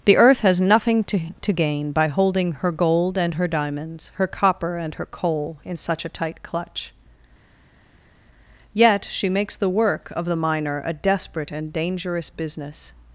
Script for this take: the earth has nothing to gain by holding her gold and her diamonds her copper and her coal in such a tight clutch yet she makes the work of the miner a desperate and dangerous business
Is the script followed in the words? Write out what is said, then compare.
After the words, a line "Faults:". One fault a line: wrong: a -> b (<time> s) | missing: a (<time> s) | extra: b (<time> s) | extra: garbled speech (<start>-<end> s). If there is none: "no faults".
the earth has nothing to to gain by holding her gold and her diamonds her copper and her coal in such a tight clutch yet she makes the work of the miner a desperate and dangerous business
Faults:
extra: to (1.4 s)